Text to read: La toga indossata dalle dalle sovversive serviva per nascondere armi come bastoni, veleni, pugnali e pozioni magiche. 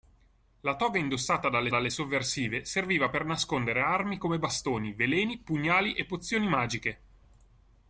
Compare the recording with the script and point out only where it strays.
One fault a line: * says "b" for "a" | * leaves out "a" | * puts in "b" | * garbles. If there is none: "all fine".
all fine